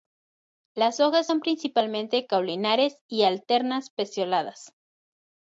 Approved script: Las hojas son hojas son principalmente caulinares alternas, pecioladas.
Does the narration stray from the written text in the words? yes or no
yes